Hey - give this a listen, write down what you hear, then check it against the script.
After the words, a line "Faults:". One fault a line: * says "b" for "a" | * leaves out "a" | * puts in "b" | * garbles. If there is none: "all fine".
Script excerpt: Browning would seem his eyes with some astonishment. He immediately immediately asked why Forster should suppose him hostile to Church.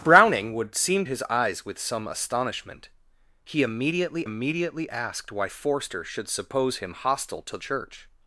Browning would seem his eyes with some astonishment. He immediately immediately asked why Forster should suppose him hostile to Church.
Faults:
all fine